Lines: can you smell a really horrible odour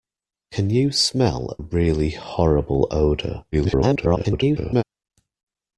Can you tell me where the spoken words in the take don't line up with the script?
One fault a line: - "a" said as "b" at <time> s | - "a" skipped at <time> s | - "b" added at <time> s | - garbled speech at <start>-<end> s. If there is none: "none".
- "a" skipped at 1.6 s
- garbled speech at 3.5-4.8 s